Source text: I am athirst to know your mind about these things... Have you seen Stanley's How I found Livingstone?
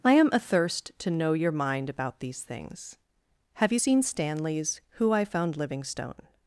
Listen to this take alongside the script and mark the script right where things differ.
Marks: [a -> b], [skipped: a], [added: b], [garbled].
I am athirst to know your mind about these things... Have you seen Stanley's [How -> Who] I found Livingstone?